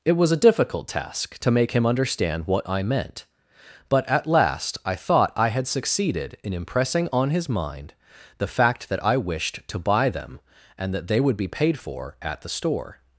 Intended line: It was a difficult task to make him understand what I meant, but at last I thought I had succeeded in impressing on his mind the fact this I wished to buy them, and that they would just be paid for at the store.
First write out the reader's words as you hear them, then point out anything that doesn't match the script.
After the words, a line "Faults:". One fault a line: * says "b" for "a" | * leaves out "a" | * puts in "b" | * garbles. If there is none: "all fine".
It was a difficult task to make him understand what I meant, but at last I thought I had succeeded in impressing on his mind the fact that I wished to buy them, and that they would be paid for at the store.
Faults:
* says "that" for "this"
* leaves out "just"